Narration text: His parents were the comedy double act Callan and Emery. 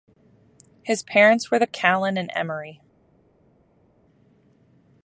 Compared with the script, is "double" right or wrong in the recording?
wrong